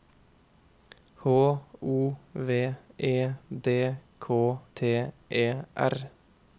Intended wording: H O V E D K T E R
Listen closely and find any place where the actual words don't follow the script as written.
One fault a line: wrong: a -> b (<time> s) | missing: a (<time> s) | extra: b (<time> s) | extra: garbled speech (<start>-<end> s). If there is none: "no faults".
no faults